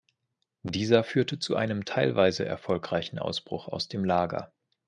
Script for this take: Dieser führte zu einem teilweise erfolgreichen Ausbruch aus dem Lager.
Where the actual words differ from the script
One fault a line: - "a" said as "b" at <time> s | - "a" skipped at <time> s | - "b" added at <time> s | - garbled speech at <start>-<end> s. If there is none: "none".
none